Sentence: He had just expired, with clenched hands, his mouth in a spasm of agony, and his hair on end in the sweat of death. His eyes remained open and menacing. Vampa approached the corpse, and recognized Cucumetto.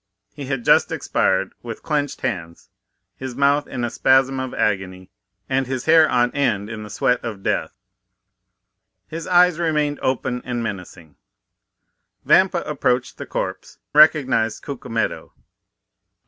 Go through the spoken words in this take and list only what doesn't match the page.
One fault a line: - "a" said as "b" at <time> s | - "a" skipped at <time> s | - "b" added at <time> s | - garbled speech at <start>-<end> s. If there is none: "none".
- "and" skipped at 13.8 s